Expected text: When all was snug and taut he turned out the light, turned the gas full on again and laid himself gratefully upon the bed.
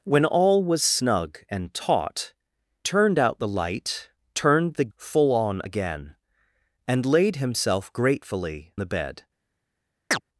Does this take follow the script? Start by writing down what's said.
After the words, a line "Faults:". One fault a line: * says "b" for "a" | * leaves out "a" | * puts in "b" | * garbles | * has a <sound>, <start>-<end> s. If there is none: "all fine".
When all was snug and taut turned out the light, turned the full on again and laid himself gratefully the bed.
Faults:
* leaves out "he"
* leaves out "gas"
* leaves out "upon"
* has a chirp, 10.1-10.2 s